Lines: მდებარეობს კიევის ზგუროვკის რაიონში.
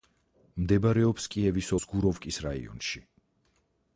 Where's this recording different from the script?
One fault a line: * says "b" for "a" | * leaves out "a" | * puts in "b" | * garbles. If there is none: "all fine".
all fine